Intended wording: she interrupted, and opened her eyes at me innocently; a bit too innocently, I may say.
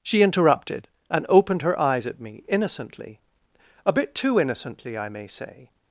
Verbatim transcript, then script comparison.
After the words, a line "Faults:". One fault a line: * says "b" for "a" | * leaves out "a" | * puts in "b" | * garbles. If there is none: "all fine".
she interrupted, and opened her eyes at me innocently; a bit too innocently, I may say.
Faults:
all fine